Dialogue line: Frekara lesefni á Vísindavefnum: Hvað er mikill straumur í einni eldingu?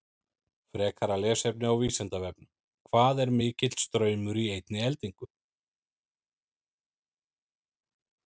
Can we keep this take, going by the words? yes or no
yes